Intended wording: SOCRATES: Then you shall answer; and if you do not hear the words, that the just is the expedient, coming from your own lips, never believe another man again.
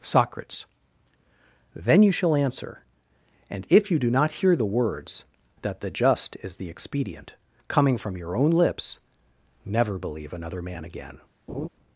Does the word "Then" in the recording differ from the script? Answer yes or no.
no